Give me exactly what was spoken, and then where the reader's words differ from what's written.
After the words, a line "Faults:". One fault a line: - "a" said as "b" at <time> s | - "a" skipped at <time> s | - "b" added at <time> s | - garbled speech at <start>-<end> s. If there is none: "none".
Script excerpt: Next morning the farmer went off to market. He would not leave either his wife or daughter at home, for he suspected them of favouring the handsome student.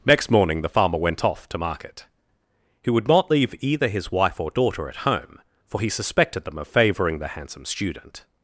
Next morning the farmer went off to market. He would not leave either his wife or daughter at home, for he suspected them of favouring the handsome student.
Faults:
none